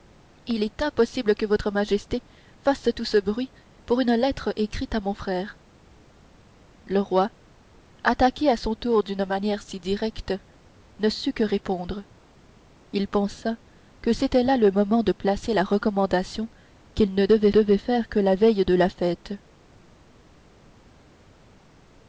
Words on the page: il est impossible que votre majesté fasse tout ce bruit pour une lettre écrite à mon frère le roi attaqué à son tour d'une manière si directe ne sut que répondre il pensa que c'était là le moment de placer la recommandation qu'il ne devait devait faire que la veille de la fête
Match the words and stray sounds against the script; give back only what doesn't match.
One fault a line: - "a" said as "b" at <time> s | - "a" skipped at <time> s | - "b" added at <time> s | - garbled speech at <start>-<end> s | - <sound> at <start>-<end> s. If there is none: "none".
none